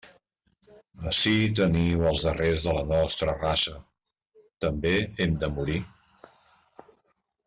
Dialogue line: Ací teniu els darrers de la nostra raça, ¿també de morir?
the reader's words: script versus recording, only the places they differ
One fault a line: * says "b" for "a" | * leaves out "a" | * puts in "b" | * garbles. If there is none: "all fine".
* puts in "hem"